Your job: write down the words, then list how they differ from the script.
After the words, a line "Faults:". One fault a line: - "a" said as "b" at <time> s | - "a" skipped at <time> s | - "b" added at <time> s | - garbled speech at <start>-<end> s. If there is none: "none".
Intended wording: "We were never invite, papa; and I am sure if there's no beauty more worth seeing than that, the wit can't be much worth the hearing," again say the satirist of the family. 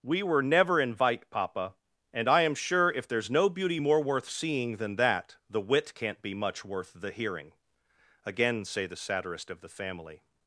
"We were never invite, papa; and I am sure if there's no beauty more worth seeing than that, the wit can't be much worth the hearing," again say the satirist of the family.
Faults:
none